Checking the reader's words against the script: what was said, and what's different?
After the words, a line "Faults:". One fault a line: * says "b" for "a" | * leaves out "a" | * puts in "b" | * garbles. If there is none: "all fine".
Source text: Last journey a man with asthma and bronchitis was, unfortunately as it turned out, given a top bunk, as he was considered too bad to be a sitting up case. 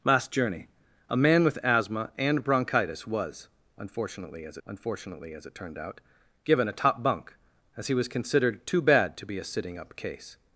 Last journey a man with asthma and bronchitis was, unfortunately as unfortunately as it turned out, given a top bunk, as he was considered too bad to be a sitting up case.
Faults:
* puts in "unfortunately as"